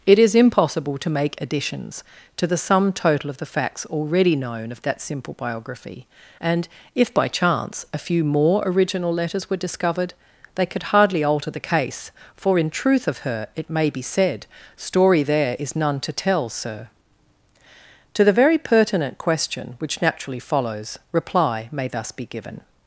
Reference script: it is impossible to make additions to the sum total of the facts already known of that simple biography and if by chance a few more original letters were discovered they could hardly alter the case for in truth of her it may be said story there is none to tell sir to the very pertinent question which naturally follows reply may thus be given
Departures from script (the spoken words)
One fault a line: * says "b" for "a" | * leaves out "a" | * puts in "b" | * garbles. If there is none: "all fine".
all fine